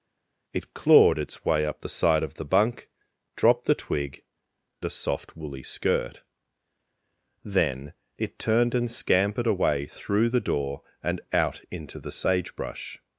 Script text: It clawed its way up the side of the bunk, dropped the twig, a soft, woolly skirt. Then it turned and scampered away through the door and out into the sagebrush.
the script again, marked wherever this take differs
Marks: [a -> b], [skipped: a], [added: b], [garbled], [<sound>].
It clawed its way up the side of the bunk, dropped the twig, a soft, woolly skirt. Then it turned and scampered away through the door and out into the sagebrush.